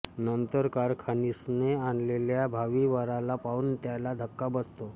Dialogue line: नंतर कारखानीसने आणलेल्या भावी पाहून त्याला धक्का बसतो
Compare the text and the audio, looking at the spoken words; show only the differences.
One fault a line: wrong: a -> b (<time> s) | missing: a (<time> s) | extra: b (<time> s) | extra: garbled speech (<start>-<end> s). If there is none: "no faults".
extra: वराला (2.9 s)